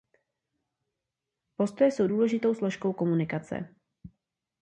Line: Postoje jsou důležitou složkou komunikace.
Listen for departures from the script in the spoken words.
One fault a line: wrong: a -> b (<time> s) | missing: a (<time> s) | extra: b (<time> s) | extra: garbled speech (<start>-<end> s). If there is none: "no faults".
no faults